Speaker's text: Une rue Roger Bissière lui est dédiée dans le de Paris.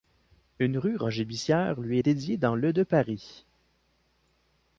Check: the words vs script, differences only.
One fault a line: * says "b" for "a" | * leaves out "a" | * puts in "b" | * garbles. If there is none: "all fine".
all fine